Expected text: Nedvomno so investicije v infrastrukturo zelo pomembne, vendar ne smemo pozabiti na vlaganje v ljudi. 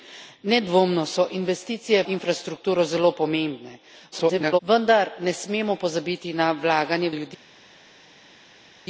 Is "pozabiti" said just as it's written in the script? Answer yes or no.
yes